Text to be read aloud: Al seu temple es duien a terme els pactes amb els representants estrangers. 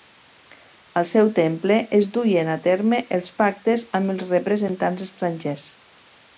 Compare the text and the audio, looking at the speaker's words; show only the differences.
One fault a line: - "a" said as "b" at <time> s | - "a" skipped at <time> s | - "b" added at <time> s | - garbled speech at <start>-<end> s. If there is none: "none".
none